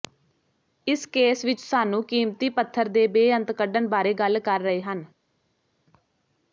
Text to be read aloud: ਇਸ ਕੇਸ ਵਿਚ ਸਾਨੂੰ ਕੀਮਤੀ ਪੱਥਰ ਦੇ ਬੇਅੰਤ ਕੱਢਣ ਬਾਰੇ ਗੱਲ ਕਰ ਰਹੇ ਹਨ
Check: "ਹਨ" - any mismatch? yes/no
no